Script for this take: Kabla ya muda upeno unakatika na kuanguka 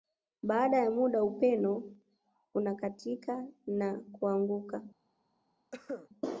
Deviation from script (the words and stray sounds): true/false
true